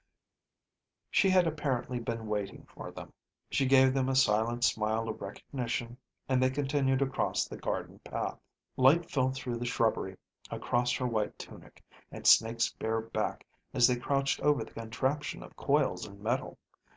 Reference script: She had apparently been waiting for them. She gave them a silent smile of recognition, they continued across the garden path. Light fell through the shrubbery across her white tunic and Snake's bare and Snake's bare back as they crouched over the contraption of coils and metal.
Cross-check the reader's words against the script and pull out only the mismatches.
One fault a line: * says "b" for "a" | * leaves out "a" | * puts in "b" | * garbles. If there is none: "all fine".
* puts in "and"
* leaves out "and Snake's bare"